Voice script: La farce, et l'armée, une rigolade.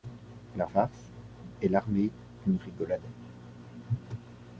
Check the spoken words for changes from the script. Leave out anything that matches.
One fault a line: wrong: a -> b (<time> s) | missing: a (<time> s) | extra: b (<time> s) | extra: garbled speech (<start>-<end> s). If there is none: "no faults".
no faults